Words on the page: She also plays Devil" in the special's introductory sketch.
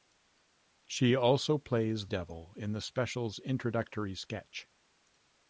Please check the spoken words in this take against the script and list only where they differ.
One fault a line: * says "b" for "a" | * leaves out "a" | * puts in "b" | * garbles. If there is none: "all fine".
all fine